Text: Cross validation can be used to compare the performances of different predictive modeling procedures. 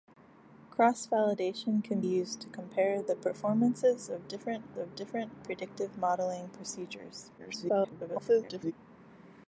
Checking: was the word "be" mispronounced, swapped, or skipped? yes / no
yes